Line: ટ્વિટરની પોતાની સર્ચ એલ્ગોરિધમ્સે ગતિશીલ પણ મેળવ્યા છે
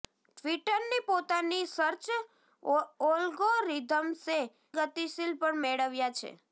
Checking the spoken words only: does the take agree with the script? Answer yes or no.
yes